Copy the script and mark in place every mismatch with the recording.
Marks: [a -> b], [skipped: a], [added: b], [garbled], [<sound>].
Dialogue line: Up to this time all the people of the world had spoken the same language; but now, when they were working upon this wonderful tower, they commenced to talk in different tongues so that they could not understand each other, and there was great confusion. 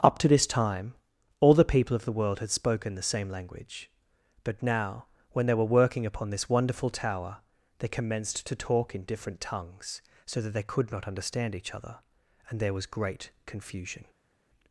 Up to this time all the people of the world had spoken the same language; but now, when they were working upon this wonderful tower, they commenced to talk in different tongues so that they could not understand each other, and there was great confusion.